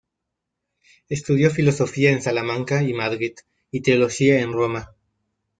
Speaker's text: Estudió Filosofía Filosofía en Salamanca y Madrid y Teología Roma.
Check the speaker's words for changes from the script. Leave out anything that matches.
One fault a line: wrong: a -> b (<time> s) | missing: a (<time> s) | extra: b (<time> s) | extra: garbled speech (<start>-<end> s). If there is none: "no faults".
missing: Filosofía (2.1 s)
extra: en (4.4 s)